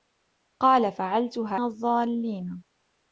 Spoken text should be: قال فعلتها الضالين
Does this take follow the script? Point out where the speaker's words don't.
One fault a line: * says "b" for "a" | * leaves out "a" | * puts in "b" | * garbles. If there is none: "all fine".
all fine